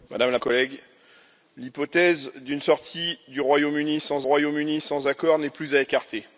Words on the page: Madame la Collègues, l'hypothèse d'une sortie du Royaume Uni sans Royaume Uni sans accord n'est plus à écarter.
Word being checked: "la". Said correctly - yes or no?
yes